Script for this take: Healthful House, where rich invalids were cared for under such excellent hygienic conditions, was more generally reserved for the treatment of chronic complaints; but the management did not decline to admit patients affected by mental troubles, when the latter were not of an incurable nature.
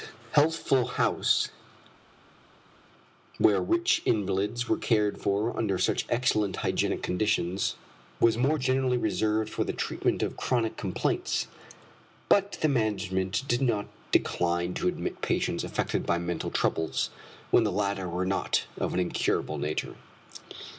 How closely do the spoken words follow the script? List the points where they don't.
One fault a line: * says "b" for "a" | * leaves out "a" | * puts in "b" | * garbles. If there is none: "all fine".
all fine